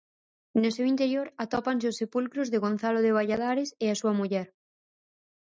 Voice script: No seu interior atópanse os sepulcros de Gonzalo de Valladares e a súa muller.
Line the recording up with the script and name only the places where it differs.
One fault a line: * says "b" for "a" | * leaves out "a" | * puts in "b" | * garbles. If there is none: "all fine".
all fine